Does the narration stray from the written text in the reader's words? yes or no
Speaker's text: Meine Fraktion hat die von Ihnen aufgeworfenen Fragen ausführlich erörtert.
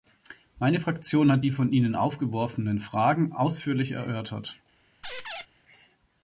no